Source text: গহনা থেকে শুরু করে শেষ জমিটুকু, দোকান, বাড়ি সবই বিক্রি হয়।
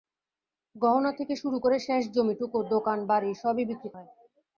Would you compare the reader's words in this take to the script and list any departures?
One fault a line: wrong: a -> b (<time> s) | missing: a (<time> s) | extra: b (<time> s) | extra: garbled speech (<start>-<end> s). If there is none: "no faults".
no faults